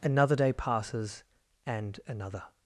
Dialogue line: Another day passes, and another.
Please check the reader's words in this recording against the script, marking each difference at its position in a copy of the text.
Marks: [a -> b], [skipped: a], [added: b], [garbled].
Another day passes, and another.